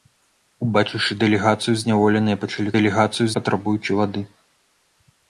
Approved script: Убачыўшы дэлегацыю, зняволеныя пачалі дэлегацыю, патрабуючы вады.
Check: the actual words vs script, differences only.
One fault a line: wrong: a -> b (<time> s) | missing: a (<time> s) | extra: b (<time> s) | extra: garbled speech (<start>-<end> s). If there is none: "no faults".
no faults